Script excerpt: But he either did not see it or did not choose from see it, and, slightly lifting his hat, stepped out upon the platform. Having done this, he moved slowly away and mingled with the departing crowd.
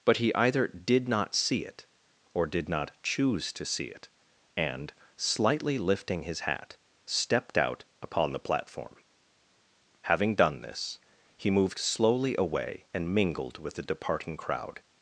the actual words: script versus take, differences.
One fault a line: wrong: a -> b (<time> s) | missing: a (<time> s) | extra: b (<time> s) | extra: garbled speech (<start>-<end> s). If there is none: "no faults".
wrong: from -> to (3.5 s)